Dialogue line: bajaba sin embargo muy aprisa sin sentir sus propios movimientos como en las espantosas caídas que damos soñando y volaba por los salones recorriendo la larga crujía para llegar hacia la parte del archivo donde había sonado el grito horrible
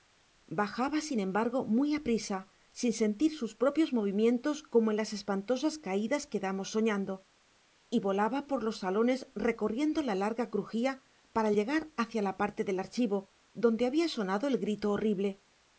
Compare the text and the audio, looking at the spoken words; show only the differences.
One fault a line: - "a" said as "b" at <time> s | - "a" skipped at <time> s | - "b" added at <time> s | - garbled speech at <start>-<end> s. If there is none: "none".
none